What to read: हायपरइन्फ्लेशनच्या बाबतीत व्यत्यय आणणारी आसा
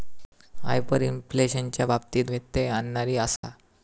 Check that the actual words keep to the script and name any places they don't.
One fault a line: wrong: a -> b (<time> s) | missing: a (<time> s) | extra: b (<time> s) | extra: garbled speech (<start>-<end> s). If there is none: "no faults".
no faults